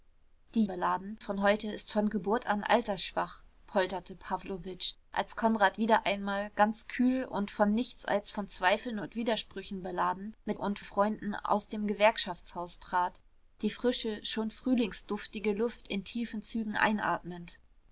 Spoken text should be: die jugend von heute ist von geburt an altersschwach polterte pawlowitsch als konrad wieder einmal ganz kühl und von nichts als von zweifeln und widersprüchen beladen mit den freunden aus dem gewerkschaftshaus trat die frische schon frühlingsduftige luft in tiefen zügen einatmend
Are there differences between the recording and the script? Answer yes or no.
yes